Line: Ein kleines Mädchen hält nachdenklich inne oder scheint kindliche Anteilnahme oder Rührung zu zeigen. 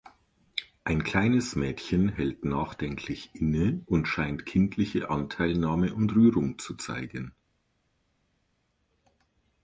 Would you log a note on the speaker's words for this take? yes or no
yes